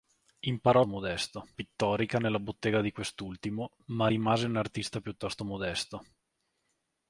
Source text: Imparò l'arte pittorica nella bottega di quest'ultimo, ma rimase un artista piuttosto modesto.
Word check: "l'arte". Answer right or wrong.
wrong